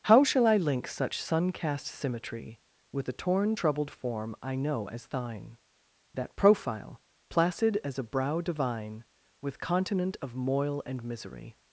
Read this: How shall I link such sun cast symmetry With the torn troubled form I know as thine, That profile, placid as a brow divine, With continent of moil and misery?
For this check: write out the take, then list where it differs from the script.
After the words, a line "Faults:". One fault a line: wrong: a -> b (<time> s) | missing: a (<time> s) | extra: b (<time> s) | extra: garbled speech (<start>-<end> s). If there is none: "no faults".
How shall I link such sun cast symmetry With the torn troubled form I know as thine, That profile, placid as a brow divine, With continent of moil and misery?
Faults:
no faults